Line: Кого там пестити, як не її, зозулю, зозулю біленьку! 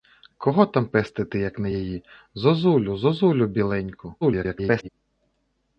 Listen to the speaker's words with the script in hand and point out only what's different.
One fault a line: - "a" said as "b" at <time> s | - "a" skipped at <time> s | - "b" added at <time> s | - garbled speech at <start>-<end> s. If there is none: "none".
- garbled speech at 4.2-4.9 s